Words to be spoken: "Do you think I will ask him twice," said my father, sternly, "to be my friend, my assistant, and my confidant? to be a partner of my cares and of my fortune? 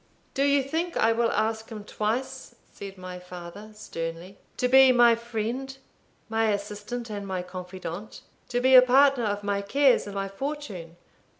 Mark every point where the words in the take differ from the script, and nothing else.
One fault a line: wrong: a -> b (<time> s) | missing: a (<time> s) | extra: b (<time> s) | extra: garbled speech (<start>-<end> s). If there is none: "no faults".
missing: of (10.2 s)